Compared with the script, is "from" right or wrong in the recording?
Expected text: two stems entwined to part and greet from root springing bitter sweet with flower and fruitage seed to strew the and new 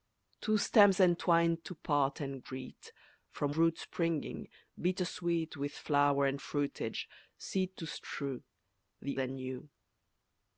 right